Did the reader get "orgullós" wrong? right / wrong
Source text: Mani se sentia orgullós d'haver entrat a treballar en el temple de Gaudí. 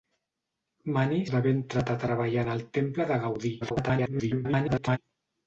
wrong